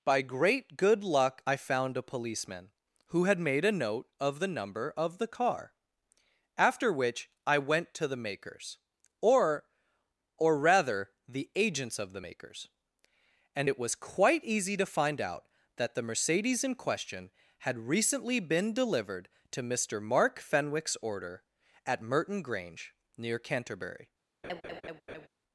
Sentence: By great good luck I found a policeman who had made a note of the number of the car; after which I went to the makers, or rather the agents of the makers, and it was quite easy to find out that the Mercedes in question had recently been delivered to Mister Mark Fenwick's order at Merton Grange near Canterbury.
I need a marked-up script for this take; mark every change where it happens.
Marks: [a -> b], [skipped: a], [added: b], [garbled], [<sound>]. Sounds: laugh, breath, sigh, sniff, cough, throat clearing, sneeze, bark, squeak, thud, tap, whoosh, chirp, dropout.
By great good luck I found a policeman who had made a note of the number of the car; after which I went to the makers, or [added: or] rather the agents of the makers, and it was quite easy to find out that the Mercedes in question had recently been delivered to Mister Mark Fenwick's order at Merton Grange near Canterbury. [laugh]